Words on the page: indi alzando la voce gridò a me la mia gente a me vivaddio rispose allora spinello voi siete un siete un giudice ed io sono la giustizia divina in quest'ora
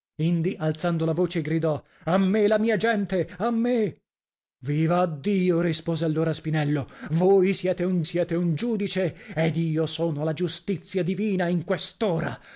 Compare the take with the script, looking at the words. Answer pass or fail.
pass